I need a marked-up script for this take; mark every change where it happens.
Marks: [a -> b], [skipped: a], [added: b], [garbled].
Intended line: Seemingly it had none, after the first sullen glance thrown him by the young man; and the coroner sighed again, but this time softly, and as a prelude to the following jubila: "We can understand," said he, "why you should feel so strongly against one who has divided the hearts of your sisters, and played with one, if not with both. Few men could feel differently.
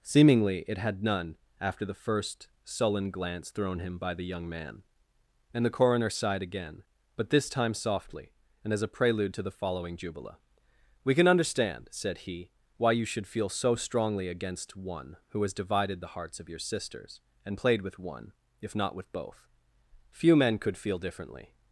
Seemingly it had none, after the first sullen glance thrown him by the young man; and the coroner sighed again, but this time softly, and as a prelude to the following jubila: "We can understand," said he, "why you should feel so strongly against one who has divided the hearts of your sisters, and played with one, if not with both. Few men could feel differently.